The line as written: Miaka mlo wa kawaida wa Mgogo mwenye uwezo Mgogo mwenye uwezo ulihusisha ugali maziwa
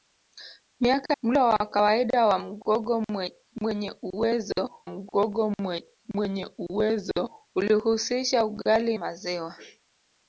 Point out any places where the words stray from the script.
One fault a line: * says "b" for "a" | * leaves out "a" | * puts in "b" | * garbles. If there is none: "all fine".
all fine